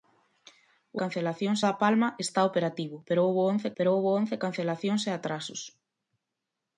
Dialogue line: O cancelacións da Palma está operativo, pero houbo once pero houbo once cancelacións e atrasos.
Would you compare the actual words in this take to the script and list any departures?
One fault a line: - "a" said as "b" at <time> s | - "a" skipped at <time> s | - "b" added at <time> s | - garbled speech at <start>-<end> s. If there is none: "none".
none